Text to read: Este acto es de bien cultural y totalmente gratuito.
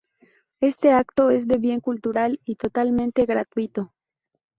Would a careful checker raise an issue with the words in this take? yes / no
no